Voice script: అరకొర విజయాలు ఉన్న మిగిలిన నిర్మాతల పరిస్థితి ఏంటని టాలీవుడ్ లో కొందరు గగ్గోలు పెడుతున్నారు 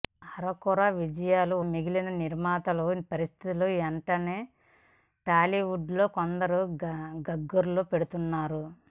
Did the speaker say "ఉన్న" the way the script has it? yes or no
no